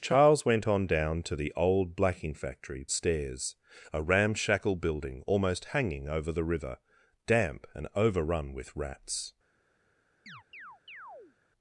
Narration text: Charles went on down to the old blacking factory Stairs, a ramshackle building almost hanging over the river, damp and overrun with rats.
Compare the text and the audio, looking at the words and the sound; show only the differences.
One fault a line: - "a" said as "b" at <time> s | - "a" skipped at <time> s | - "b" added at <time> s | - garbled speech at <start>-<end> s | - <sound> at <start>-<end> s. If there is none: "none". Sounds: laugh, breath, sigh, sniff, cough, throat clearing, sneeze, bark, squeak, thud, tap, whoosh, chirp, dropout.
- chirp at 10.3-11.4 s